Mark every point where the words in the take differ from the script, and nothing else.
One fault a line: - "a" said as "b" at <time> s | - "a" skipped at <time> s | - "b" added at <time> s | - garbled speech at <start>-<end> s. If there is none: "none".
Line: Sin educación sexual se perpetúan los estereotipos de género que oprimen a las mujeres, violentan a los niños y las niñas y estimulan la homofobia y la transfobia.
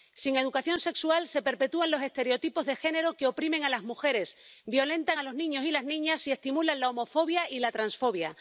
none